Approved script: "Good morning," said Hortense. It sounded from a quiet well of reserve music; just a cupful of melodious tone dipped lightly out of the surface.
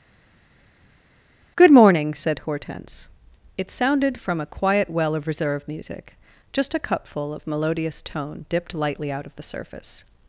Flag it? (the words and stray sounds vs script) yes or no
no